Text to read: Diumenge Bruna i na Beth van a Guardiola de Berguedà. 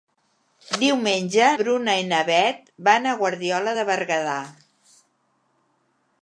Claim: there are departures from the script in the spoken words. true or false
false